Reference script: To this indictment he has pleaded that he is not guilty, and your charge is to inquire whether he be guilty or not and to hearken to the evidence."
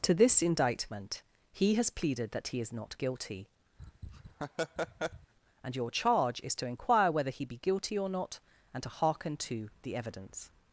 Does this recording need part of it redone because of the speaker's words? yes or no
no